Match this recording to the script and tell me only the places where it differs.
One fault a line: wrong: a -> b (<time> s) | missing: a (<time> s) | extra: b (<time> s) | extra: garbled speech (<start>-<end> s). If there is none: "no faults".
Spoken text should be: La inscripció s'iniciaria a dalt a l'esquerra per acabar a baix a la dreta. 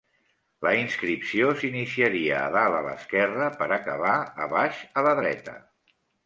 no faults